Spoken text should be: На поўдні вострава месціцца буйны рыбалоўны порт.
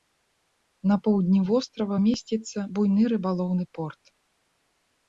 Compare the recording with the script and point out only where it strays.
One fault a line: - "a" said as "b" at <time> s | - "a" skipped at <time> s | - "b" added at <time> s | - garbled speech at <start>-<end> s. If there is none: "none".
none